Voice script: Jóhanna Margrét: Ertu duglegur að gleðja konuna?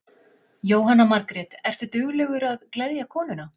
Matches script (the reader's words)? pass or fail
pass